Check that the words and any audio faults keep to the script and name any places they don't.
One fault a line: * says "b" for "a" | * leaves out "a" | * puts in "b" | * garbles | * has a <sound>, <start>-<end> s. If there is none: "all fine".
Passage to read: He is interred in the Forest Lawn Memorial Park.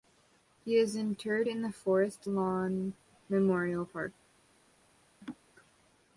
* has a laugh, 5.2-5.4 s